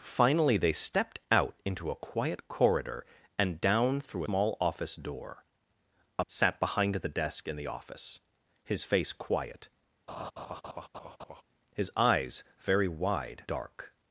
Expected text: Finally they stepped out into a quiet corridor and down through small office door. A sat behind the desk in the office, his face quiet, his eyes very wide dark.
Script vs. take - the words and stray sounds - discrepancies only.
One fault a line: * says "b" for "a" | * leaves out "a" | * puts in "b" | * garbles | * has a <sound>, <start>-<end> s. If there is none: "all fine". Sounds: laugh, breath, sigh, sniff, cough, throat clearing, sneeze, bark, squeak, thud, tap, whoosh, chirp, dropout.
* has a laugh, 10.1-11.4 s